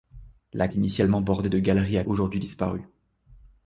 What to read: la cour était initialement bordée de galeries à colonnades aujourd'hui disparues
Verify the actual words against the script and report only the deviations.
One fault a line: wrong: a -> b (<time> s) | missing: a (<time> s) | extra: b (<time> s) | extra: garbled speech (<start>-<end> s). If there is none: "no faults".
missing: cour était (0.7 s)
missing: colonnades (2.0 s)